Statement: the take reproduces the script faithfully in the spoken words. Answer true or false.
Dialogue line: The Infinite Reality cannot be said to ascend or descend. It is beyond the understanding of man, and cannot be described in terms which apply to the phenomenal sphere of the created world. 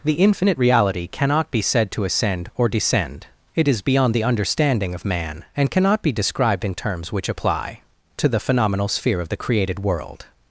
true